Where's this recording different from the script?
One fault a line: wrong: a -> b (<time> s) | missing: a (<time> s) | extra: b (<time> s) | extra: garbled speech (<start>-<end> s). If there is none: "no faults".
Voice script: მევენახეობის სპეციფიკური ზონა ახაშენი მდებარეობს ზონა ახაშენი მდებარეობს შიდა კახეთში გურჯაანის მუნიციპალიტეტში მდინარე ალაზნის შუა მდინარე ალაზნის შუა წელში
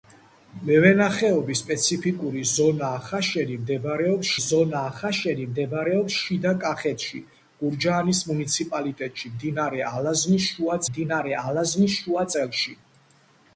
no faults